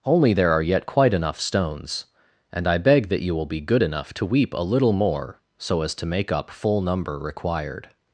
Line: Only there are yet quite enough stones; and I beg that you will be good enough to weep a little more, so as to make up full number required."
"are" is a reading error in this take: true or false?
false